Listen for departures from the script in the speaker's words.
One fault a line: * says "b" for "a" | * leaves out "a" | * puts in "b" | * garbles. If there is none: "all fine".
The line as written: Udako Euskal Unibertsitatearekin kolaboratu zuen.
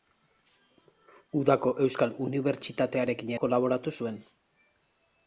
all fine